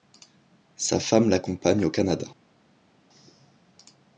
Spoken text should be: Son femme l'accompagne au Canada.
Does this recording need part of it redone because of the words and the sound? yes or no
yes